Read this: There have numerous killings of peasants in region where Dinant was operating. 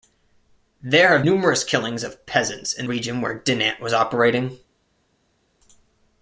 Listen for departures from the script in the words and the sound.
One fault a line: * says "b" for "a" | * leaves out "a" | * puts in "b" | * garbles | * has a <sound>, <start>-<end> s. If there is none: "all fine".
all fine